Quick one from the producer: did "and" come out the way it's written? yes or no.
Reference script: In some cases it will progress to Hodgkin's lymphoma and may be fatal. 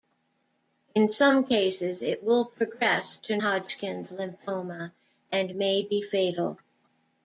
yes